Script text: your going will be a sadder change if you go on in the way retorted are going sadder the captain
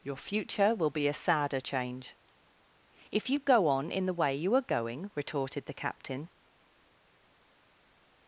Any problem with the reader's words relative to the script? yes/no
yes